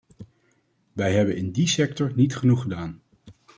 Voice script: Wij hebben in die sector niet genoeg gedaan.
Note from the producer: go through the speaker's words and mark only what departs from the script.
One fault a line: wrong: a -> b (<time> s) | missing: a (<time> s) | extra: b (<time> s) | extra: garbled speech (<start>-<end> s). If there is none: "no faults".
no faults